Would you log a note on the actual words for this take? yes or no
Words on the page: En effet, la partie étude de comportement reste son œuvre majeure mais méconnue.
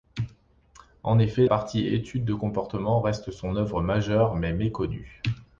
yes